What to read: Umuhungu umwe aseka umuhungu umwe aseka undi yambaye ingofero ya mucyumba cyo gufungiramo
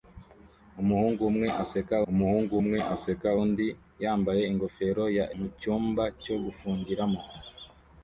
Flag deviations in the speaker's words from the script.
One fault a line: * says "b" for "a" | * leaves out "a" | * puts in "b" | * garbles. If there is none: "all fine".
all fine